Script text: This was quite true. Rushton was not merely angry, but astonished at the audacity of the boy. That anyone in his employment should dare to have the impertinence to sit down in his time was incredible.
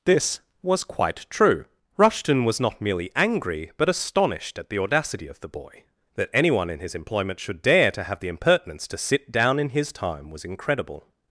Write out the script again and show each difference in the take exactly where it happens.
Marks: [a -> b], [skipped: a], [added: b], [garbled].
This was quite true. Rushton was not merely angry, but astonished at the audacity of the boy. That anyone in his employment should dare to have the impertinence to sit down in his time was incredible.